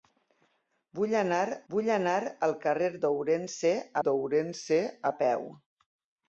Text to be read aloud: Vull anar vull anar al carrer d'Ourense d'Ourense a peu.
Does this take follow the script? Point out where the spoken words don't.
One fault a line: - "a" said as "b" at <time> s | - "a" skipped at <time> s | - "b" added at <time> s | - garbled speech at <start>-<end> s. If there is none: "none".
none